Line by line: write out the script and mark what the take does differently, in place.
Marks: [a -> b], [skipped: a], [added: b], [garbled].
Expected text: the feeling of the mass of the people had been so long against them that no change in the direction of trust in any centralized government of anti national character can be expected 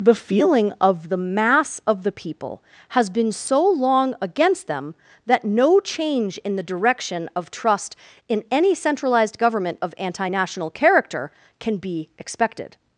the feeling of the mass of the people [had -> has] been so long against them that no change in the direction of trust in any centralized government of anti national character can be expected